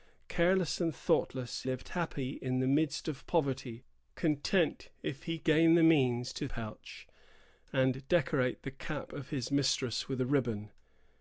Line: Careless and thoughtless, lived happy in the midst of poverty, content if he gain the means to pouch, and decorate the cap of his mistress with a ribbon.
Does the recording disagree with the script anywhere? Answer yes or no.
no